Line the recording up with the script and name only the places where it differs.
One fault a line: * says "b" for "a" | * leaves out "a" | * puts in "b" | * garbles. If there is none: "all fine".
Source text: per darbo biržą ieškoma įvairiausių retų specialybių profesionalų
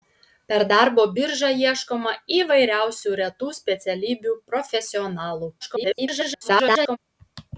* garbles